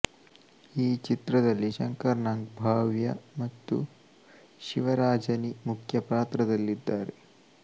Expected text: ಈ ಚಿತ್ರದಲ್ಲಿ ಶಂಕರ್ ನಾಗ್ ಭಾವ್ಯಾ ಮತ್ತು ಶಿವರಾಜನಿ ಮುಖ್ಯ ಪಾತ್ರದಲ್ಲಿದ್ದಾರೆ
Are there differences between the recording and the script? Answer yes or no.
no